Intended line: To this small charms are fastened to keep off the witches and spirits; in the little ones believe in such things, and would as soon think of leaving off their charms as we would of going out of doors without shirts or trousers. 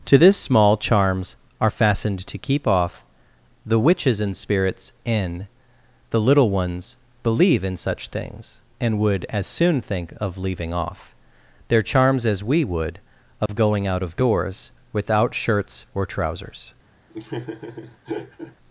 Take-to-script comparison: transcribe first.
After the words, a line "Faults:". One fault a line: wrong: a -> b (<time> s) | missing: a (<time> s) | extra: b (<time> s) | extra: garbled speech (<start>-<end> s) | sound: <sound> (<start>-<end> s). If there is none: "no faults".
To this small charms are fastened to keep off the witches and spirits; in the little ones believe in such things, and would as soon think of leaving off their charms as we would of going out of doors without shirts or trousers.
Faults:
sound: dropout (13.5-13.5 s)
sound: laugh (17.1-18.6 s)